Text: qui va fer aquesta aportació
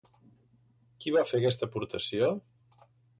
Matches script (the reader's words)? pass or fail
pass